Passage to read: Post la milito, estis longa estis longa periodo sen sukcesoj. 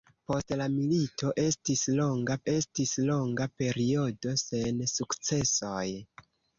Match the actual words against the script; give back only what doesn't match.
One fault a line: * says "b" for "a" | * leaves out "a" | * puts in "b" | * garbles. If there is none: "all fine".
all fine